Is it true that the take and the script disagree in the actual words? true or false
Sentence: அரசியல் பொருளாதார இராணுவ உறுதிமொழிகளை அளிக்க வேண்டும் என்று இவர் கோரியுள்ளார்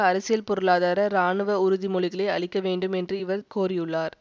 false